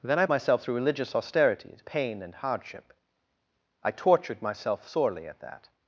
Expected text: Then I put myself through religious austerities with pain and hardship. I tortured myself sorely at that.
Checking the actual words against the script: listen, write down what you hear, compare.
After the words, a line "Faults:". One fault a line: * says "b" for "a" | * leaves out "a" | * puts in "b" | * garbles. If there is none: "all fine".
Then I myself through religious austerities pain and hardship. I tortured myself sorely at that.
Faults:
* leaves out "put"
* leaves out "with"